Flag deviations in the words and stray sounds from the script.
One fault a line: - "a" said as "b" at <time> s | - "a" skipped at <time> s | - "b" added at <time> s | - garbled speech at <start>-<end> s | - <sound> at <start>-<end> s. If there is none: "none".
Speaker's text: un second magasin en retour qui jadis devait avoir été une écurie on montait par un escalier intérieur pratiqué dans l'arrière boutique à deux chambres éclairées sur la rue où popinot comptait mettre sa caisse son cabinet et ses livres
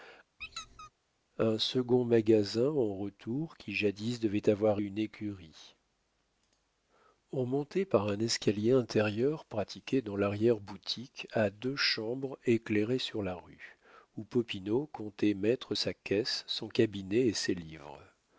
- squeak at 0.4-0.9 s
- "été" skipped at 4.8 s